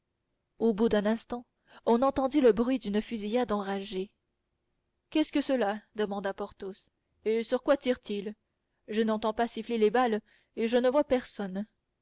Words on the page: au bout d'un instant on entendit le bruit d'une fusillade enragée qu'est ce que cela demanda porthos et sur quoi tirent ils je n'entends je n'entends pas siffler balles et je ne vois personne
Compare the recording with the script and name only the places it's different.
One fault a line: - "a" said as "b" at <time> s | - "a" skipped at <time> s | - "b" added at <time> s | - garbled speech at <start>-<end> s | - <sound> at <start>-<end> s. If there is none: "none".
- "je n'entends" skipped at 9.3 s
- "les" added at 9.8 s